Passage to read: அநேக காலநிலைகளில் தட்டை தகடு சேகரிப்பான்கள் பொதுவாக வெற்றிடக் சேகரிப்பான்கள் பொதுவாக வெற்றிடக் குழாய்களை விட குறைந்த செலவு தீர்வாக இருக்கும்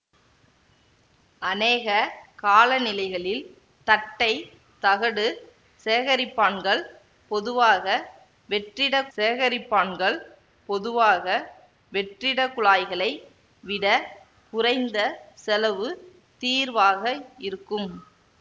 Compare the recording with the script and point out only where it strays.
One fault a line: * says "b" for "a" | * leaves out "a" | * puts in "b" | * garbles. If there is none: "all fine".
all fine